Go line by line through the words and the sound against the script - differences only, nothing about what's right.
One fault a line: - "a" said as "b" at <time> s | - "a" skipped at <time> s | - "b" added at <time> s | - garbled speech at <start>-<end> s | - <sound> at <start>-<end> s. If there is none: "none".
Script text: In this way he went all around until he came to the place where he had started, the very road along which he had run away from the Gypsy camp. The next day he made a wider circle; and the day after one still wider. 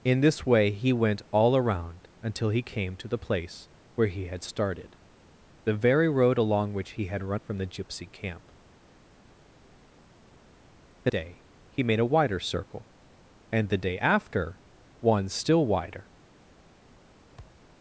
- "away" skipped at 7.4 s
- "next" skipped at 11.1 s
- thud at 17.4-17.7 s